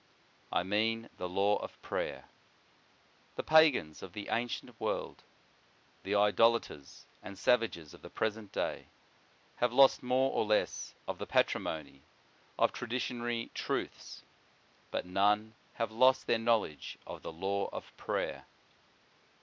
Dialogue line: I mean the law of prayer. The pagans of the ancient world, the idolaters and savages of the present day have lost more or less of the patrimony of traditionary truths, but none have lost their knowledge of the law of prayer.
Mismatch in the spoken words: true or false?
false